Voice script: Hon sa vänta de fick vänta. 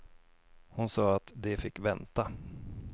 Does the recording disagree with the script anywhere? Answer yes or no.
yes